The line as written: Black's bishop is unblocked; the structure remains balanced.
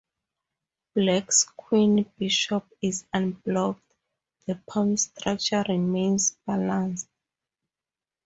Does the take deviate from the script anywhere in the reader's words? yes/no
yes